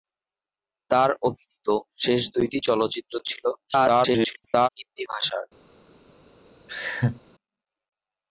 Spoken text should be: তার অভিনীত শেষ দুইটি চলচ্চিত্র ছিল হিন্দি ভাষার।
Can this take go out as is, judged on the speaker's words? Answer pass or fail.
fail